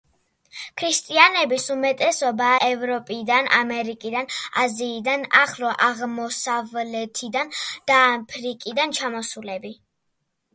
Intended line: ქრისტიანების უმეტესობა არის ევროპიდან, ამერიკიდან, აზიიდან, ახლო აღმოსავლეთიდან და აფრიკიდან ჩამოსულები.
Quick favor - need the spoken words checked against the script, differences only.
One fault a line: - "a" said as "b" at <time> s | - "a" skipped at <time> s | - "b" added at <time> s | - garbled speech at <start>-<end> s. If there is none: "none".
- "არის" skipped at 2.5 s